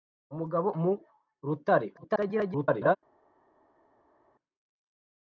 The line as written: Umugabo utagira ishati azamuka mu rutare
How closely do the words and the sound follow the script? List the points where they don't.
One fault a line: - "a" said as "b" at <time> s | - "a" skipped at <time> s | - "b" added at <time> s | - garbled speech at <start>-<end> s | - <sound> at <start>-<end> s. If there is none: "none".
- "utagira ishati azamuka" skipped at 0.7 s
- garbled speech at 1.9-3.0 s